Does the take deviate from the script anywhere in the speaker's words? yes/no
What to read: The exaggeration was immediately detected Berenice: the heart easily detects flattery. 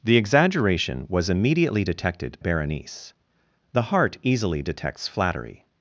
no